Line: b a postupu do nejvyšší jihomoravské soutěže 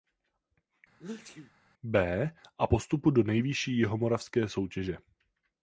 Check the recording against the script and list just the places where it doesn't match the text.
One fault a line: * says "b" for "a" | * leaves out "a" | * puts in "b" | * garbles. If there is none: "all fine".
all fine